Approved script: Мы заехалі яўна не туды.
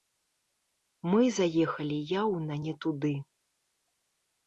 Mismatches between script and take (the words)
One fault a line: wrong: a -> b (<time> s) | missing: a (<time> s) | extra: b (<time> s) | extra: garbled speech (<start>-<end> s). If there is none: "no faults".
no faults